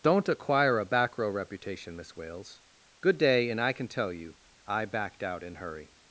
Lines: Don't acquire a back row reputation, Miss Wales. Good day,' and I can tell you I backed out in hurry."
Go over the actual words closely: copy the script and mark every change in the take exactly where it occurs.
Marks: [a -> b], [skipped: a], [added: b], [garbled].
Don't acquire a back row reputation, Miss Wales. Good day,' and I can tell you I backed out in hurry."